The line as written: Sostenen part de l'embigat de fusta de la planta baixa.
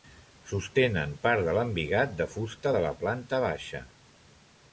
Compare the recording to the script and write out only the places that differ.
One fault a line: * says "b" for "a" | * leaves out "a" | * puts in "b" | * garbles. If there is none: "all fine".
all fine